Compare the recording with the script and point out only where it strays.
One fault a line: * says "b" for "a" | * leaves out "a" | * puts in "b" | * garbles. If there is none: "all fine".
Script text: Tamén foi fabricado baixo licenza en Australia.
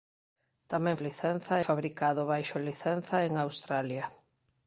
* says "licenza" for "foi"